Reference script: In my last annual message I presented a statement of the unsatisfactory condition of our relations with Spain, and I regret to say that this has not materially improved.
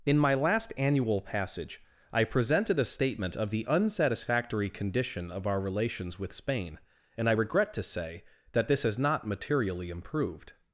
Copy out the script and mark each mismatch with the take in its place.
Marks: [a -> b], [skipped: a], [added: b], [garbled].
In my last annual [message -> passage] I presented a statement of the unsatisfactory condition of our relations with Spain, and I regret to say that this has not materially improved.